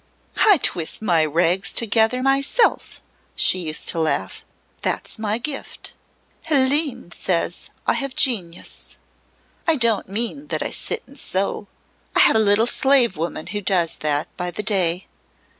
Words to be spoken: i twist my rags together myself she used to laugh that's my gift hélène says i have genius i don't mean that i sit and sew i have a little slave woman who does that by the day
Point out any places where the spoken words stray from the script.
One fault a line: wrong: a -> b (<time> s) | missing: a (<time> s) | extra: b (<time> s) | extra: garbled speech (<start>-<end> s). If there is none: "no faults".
no faults